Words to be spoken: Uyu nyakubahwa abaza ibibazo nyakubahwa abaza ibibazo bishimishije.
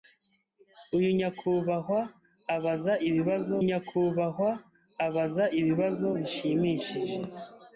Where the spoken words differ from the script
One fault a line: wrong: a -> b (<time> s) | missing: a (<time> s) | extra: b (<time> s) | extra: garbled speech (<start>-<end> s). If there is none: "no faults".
no faults